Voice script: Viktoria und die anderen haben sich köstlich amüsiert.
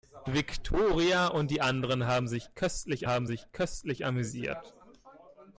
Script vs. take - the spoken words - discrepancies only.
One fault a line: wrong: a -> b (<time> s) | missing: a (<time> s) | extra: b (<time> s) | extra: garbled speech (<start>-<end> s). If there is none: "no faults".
extra: haben sich köstlich (3.1 s)